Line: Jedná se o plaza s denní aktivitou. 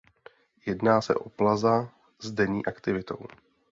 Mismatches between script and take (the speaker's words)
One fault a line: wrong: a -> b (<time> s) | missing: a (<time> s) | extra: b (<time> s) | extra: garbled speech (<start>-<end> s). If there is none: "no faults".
no faults